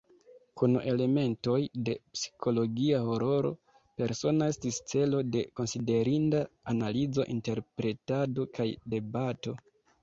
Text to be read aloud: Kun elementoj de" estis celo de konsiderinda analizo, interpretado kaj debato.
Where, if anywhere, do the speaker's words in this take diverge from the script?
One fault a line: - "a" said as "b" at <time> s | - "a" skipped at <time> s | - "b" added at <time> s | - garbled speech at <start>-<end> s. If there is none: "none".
- "psikologia hororo Persona" added at 2.1 s